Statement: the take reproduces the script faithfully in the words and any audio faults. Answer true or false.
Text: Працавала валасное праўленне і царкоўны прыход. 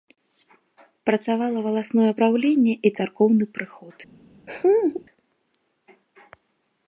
false